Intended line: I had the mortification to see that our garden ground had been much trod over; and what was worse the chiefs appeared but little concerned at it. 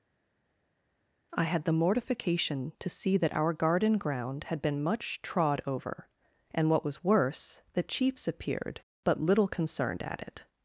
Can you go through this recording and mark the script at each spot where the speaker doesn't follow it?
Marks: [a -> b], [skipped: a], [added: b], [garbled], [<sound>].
I had the mortification to see that our garden ground had been much trod over; and what was worse the chiefs appeared but little concerned at it.